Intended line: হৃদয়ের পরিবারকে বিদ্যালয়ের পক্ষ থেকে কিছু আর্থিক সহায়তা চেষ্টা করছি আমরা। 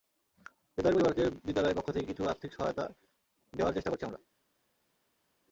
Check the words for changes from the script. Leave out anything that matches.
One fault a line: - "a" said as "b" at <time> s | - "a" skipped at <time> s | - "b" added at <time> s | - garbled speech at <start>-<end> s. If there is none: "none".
- "দেওয়ার" added at 3.5 s